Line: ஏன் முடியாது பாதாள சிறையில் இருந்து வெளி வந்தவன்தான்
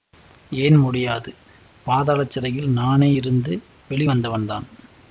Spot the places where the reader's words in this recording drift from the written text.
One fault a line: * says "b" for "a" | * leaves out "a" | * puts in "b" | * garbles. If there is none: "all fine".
* puts in "நானே"